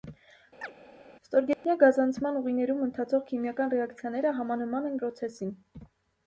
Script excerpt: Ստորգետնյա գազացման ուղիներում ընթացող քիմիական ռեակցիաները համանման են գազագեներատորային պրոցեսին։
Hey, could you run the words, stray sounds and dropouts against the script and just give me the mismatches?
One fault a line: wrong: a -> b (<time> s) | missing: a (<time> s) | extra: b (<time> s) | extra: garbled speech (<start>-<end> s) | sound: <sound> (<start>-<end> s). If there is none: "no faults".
sound: chirp (0.6-0.7 s)
sound: dropout (1.5-1.6 s)
missing: գազագեներատորային (5.0 s)